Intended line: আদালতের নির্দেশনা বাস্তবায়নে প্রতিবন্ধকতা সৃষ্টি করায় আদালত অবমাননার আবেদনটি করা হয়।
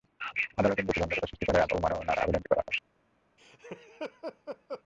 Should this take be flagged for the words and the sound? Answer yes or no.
yes